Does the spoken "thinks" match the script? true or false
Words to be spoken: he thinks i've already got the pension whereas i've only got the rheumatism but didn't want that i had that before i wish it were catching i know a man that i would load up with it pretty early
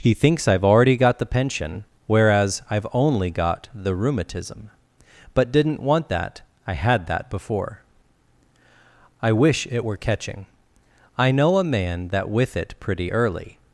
true